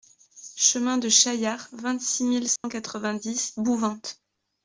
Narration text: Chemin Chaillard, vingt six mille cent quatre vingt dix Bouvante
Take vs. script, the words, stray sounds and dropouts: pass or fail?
fail